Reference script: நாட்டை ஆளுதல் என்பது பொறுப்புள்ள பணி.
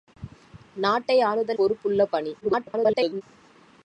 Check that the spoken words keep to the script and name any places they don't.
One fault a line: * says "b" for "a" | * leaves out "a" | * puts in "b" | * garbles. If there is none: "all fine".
* leaves out "என்பது"
* garbles